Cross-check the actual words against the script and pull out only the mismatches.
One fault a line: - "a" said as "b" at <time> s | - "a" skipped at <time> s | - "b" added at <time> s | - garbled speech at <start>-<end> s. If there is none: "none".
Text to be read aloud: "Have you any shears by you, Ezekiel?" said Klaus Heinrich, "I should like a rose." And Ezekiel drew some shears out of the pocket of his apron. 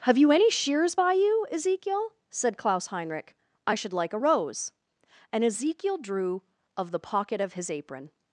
- "some shears out" skipped at 6.4 s